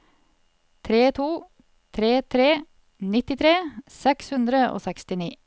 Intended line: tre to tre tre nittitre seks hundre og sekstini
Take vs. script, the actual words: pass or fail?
pass